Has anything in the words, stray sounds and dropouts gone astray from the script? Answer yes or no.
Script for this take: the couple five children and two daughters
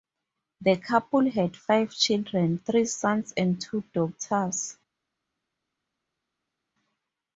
yes